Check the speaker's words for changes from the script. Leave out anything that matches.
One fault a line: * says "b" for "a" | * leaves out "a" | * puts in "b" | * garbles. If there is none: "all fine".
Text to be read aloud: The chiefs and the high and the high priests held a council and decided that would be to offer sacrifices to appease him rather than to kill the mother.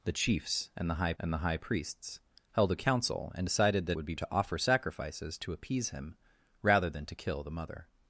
all fine